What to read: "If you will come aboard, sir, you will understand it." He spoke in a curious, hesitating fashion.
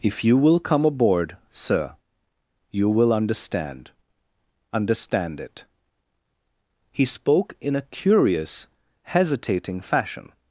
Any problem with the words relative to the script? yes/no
yes